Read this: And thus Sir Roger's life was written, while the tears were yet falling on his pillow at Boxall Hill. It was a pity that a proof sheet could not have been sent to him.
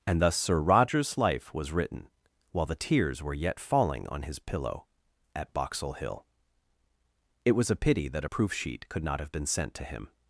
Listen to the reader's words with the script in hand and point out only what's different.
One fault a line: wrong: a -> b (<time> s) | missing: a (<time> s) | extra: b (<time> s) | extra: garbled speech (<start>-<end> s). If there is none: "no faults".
no faults